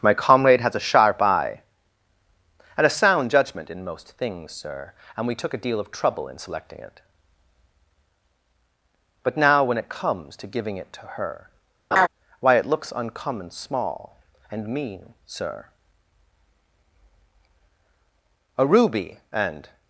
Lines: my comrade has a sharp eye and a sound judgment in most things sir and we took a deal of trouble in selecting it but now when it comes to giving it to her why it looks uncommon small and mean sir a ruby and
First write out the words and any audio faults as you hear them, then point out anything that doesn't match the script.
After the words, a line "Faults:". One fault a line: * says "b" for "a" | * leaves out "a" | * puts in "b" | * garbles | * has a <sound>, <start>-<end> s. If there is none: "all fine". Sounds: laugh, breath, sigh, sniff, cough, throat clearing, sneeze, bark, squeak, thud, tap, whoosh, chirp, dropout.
my comrade has a sharp eye and a sound judgment in most things sir and we took a deal of trouble in selecting it but now when it comes to giving it to her why it looks uncommon small and mean sir a ruby and
Faults:
* has a laugh, 11.9-12.1 s